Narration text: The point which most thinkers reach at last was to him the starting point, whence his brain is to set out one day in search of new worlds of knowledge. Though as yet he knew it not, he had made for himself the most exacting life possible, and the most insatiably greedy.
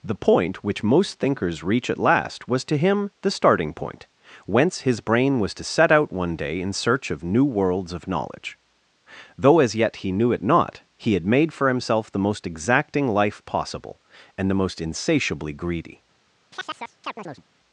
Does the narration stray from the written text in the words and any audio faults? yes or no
yes